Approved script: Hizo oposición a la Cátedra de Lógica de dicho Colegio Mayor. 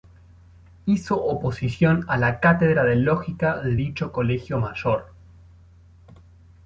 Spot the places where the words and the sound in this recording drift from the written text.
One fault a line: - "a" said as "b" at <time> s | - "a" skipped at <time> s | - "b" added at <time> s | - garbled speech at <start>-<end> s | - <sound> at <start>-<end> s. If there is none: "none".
none